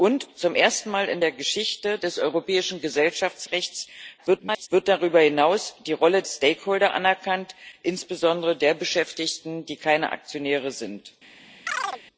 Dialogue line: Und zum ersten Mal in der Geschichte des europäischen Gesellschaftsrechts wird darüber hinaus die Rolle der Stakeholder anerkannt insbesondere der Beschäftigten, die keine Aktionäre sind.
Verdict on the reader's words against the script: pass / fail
fail